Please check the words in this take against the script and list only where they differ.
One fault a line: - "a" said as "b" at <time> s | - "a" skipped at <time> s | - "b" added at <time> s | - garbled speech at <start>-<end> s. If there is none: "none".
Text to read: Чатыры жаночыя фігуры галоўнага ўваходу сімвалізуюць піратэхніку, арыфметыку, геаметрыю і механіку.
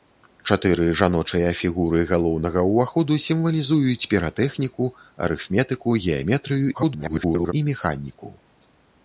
- garbled speech at 6.7-7.5 s